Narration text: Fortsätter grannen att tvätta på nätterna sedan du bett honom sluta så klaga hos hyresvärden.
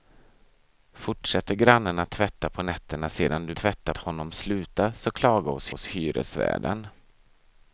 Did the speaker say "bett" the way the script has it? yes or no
no